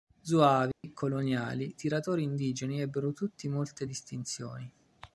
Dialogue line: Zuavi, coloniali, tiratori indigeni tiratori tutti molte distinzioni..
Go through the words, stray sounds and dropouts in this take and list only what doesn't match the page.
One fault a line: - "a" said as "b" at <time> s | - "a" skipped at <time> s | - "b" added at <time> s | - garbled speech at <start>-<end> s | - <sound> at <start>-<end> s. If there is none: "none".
- dropout at 0.7-0.8 s
- "tiratori" said as "ebbero" at 2.8 s